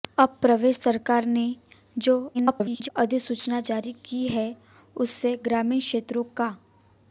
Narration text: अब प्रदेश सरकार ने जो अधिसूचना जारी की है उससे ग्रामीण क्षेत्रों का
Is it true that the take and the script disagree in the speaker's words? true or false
true